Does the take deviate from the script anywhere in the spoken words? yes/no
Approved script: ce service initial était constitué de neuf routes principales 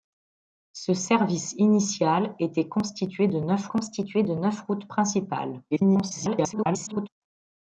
yes